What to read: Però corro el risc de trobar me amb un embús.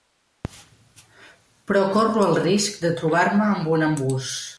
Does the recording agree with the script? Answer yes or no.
yes